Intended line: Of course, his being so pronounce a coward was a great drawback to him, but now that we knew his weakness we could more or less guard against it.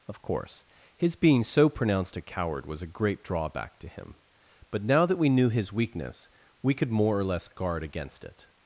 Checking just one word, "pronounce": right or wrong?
wrong